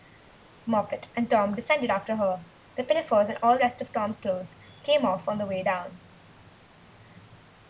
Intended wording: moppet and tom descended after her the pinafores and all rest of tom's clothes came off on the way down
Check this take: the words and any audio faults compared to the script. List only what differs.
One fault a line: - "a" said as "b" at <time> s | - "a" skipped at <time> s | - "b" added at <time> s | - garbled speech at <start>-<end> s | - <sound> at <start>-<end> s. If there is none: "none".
none